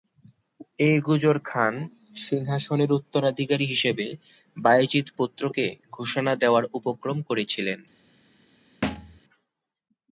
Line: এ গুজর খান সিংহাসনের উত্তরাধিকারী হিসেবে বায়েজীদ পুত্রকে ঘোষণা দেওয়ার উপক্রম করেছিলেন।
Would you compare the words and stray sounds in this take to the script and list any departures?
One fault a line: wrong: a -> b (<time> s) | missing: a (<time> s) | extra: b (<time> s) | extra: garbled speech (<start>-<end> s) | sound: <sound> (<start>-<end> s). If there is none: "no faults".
sound: thud (8.8-9.2 s)